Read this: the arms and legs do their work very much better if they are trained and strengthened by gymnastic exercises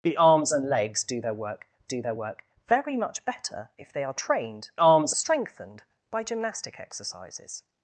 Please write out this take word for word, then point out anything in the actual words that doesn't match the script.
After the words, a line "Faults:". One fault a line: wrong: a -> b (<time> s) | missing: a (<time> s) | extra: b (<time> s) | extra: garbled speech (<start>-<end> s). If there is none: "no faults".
the arms and legs do their work do their work very much better if they are trained arms strengthened by gymnastic exercises
Faults:
extra: do their work (1.8 s)
wrong: and -> arms (4.8 s)